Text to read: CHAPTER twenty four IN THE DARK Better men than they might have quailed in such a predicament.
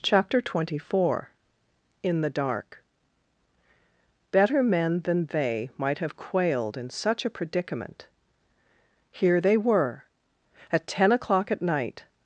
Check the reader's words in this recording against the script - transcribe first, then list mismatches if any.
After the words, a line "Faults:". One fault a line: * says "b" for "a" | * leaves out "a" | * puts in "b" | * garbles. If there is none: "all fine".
CHAPTER twenty four IN THE DARK Better men than they might have quailed in such a predicament. Here they were, at ten o'clock at night
Faults:
* puts in "Here they were at ten o'clock at night"